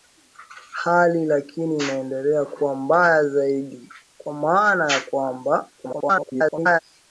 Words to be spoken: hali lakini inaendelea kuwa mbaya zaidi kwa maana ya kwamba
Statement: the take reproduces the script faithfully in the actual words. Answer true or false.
false